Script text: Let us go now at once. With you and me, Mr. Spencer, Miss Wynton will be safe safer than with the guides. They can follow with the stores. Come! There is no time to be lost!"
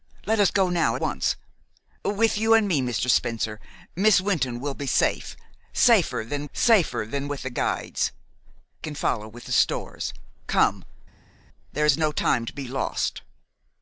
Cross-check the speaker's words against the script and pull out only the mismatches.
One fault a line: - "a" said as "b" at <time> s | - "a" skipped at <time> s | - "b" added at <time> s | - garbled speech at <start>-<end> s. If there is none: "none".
- "at" skipped at 0.9 s
- "safer than" added at 6.5 s
- "They" skipped at 8.1 s